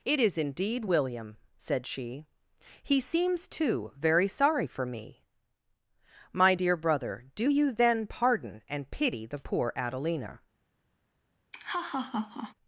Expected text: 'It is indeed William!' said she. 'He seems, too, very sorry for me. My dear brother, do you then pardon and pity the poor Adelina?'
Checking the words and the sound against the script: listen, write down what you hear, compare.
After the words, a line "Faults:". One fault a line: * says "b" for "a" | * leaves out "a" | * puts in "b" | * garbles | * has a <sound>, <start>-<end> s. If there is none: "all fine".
'It is indeed William!' said she. 'He seems, too, very sorry for me. My dear brother, do you then pardon and pity the poor Adelina?'
Faults:
* has a laugh, 11.5-12.5 s